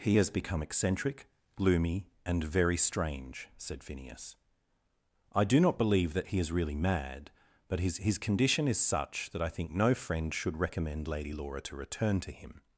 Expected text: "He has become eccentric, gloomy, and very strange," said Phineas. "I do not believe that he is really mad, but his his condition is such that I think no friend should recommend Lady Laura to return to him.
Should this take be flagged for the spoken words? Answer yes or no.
no